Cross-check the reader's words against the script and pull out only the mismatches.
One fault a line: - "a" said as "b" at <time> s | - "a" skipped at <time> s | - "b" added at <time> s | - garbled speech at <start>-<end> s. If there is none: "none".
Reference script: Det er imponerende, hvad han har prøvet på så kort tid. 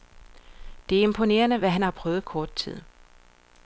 - "på så" skipped at 2.2 s